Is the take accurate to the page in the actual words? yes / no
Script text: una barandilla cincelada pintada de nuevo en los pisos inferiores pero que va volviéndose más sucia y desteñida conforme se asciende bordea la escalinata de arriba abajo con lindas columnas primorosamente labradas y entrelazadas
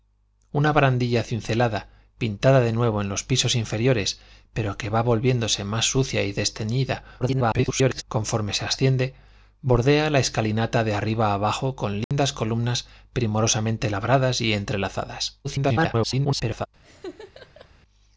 no